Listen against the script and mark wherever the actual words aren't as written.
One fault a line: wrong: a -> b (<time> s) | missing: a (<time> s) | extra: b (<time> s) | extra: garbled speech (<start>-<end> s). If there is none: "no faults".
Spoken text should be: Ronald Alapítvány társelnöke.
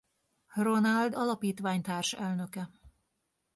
no faults